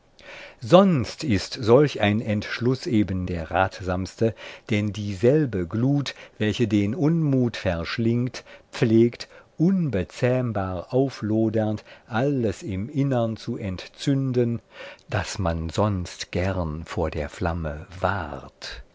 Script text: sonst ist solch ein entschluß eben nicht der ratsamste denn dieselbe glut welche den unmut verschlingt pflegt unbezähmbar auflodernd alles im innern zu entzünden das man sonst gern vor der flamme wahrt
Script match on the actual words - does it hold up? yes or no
no